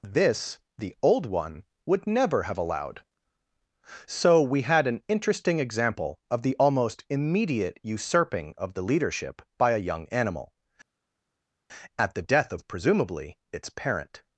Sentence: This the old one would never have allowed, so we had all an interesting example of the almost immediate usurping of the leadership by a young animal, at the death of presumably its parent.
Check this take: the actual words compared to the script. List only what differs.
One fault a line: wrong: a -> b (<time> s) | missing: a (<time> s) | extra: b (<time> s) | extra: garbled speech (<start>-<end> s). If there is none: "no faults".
missing: all (4.9 s)